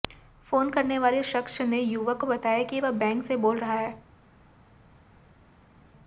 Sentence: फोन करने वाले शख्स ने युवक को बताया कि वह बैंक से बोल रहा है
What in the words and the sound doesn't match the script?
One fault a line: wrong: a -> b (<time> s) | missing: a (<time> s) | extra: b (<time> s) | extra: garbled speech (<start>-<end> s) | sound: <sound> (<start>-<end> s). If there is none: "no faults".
no faults